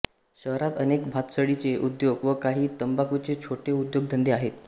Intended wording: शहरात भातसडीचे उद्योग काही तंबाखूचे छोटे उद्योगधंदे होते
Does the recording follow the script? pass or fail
fail